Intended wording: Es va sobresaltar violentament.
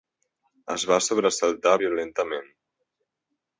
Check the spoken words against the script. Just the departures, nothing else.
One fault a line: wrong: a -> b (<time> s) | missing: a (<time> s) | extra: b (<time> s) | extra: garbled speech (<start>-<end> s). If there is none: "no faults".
no faults